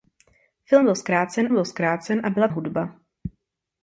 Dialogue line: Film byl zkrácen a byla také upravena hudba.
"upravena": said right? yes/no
no